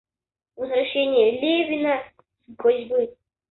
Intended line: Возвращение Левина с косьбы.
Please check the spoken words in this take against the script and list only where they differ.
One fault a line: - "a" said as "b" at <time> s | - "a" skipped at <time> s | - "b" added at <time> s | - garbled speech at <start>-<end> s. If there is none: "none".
none